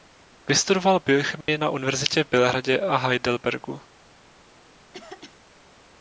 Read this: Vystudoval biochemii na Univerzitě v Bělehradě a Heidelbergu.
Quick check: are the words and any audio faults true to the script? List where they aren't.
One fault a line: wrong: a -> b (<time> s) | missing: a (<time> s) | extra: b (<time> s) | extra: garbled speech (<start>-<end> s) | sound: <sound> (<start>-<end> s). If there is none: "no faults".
sound: dropout (1.4-1.5 s)
sound: throat clearing (4.9-5.4 s)